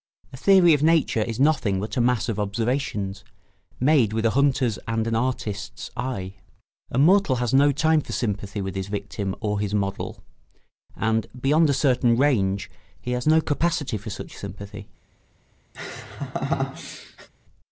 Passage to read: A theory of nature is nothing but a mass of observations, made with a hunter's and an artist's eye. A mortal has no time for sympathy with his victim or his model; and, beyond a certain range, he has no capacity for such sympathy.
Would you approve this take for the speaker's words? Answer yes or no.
yes